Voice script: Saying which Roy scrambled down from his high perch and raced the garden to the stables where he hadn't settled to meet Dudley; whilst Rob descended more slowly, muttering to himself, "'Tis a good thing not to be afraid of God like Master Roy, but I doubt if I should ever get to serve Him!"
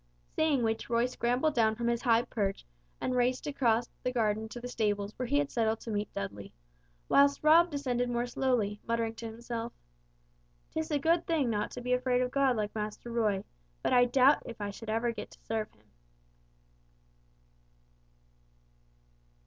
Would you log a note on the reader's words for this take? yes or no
yes